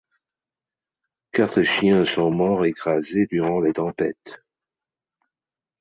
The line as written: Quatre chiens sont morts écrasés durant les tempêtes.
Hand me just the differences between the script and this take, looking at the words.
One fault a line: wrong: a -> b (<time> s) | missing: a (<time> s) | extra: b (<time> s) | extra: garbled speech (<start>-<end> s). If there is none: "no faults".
no faults